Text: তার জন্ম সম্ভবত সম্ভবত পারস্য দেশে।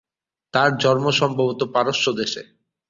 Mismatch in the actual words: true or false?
true